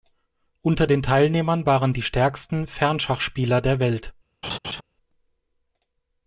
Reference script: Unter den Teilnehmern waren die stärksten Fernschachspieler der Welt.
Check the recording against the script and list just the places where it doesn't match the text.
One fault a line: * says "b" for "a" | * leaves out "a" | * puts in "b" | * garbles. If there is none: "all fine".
all fine